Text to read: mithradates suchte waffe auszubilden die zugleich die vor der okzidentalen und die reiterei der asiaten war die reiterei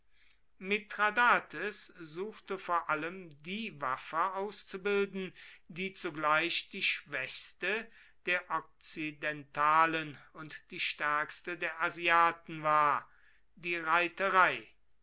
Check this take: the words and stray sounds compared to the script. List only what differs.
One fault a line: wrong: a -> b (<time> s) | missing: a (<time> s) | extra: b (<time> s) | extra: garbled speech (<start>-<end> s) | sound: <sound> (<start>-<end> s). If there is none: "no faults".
extra: vor allem die (2.6 s)
wrong: vor -> schwächste (6.8 s)
wrong: reiterei -> stärkste (10.8 s)